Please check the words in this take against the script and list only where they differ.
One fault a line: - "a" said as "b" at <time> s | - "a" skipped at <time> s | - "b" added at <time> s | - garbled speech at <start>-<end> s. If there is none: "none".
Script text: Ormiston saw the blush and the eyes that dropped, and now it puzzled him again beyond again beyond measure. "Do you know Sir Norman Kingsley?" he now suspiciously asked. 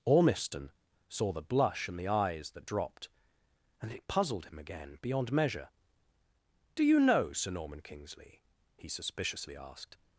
- "now" skipped at 3.9 s
- "again beyond" skipped at 5.3 s
- "now" skipped at 8.9 s